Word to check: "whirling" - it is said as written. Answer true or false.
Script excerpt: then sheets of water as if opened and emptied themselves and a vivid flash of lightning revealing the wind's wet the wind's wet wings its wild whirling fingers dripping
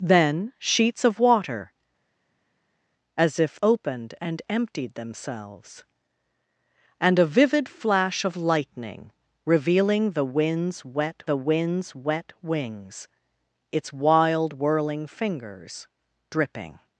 true